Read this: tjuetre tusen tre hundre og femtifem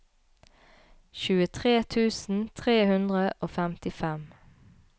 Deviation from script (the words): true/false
false